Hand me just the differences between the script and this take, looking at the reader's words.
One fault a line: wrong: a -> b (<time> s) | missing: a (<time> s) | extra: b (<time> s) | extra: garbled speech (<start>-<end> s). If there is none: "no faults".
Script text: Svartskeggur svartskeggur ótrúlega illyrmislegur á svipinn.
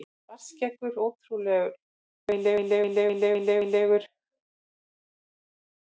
missing: svartskeggur (0.9 s)